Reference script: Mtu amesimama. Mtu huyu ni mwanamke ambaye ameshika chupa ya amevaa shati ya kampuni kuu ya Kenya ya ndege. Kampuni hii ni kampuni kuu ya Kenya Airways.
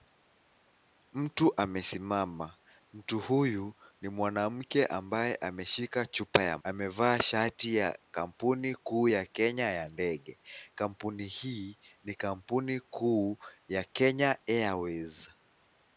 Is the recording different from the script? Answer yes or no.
no